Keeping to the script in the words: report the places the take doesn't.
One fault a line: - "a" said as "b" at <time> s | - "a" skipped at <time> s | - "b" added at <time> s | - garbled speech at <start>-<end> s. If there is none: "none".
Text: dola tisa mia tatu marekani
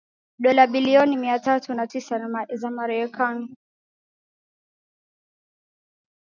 - "tisa" said as "bilioni" at 0.7 s
- "na tisa za" added at 1.7 s